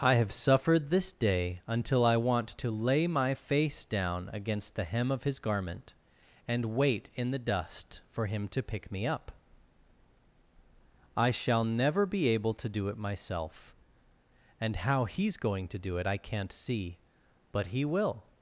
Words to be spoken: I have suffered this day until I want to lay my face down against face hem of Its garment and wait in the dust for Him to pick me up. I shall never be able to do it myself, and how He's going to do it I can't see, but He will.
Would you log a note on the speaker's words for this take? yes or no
yes